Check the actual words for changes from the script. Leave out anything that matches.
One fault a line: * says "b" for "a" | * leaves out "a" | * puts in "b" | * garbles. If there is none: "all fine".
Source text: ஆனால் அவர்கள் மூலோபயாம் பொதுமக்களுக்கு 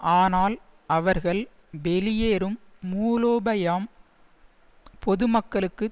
* puts in "வெளியேறும்"